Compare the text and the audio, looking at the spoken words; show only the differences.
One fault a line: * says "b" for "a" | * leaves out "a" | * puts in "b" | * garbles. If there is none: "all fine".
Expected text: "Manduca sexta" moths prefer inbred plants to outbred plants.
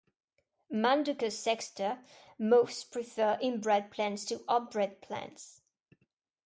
all fine